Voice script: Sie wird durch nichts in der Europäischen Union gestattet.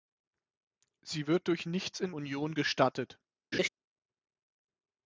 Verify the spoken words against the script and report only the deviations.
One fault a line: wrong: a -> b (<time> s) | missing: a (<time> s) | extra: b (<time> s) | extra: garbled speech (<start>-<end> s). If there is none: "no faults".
missing: der Europäischen (2.1 s)